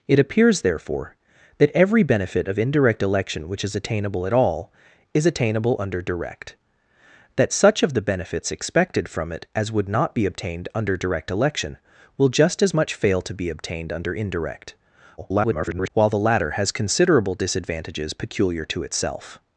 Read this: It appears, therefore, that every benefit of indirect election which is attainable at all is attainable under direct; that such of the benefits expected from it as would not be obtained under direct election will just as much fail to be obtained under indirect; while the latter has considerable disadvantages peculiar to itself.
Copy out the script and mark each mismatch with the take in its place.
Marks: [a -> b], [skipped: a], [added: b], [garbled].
It appears, therefore, that every benefit of indirect election which is attainable at all is attainable under direct; that such of the benefits expected from it as would not be obtained under direct election will just as much fail to be obtained under indirect; [garbled] while the latter has considerable disadvantages peculiar to itself.